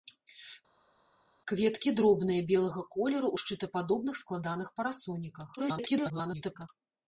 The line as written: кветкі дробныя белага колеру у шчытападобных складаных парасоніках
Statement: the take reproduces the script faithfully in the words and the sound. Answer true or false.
false